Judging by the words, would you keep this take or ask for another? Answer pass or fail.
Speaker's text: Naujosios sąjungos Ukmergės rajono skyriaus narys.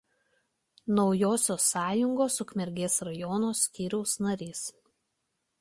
pass